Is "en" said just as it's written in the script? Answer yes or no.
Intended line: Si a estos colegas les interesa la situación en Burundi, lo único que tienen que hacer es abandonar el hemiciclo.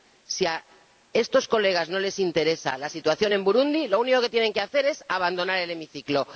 yes